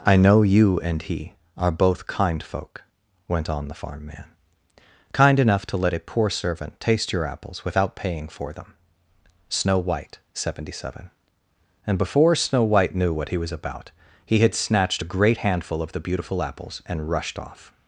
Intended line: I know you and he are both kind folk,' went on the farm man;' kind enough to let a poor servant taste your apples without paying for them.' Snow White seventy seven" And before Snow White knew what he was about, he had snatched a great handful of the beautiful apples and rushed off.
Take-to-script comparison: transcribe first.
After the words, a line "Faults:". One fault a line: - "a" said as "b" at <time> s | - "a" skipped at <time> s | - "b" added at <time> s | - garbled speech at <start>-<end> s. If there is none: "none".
I know you and he are both kind folk,' went on the farm man;' kind enough to let a poor servant taste your apples without paying for them.' Snow White seventy seven" And before Snow White knew what he was about, he had snatched a great handful of the beautiful apples and rushed off.
Faults:
none